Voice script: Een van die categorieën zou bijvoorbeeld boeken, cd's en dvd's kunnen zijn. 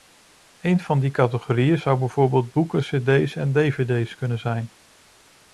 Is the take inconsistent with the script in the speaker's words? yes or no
no